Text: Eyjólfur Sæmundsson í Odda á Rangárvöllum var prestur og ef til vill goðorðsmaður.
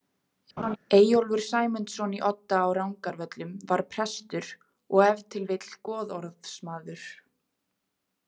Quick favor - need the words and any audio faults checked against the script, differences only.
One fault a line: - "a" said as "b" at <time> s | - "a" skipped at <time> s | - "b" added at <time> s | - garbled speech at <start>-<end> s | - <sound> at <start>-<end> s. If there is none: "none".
- laugh at 0.6-0.8 s